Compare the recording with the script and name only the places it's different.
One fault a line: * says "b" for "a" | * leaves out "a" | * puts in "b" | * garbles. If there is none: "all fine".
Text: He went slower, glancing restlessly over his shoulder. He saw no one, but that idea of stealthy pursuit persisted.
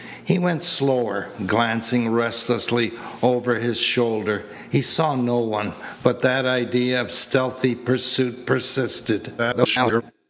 * garbles